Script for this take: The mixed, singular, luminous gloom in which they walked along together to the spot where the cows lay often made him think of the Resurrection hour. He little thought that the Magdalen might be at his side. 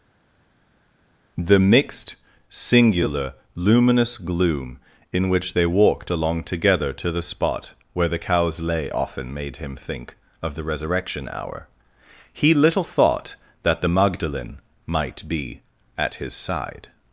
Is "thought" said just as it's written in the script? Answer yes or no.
yes